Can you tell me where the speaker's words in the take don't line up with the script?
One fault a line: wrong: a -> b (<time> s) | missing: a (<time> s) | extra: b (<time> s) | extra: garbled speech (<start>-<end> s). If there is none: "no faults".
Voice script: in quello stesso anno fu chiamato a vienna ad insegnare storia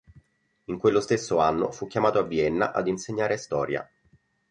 no faults